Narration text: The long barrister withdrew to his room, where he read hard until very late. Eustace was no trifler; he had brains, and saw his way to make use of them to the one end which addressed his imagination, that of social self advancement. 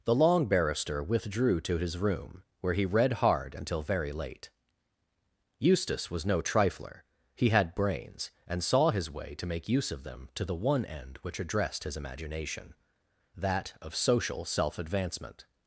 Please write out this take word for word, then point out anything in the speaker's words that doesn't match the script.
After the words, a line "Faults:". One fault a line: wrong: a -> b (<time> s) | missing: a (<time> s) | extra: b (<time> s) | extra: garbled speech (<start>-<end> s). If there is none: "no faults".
The long barrister withdrew to his room, where he read hard until very late. Eustace was no trifler; he had brains, and saw his way to make use of them to the one end which addressed his imagination, that of social self advancement.
Faults:
no faults